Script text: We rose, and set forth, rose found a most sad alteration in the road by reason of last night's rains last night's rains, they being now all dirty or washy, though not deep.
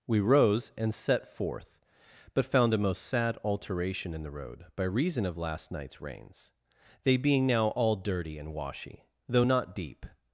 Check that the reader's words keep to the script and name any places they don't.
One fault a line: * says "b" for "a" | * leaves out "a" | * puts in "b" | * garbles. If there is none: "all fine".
* says "but" for "rose"
* leaves out "last night's rains"
* says "and" for "or"